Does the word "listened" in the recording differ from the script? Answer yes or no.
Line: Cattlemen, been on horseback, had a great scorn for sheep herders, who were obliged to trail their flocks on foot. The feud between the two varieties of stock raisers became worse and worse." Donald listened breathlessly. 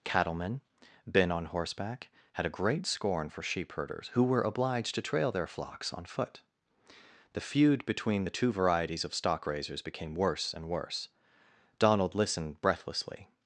no